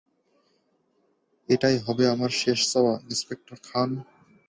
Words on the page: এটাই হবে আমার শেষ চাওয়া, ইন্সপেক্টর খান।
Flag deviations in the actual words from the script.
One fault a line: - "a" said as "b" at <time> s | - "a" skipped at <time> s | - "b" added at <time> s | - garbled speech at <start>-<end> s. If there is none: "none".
none